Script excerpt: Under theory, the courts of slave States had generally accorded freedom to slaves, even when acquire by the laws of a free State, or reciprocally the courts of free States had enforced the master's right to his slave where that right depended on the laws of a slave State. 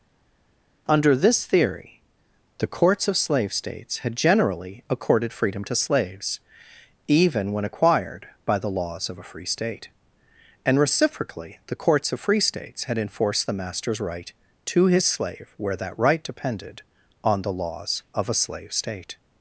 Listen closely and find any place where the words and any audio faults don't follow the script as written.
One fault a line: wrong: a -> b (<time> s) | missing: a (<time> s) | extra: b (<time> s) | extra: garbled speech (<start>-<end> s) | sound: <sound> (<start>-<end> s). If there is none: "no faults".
extra: this (1.2 s)
wrong: acquire -> acquired (7.6 s)
wrong: or -> and (10.6 s)